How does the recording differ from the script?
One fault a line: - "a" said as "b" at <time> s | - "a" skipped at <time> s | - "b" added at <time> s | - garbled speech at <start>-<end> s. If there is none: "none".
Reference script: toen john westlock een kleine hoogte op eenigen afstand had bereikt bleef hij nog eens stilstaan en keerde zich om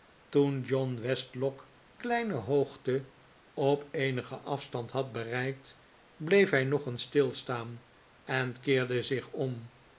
- "een" skipped at 1.7 s